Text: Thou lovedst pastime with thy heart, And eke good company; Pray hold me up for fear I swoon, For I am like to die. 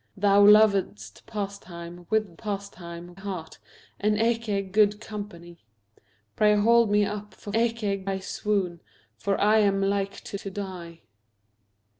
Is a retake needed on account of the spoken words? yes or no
yes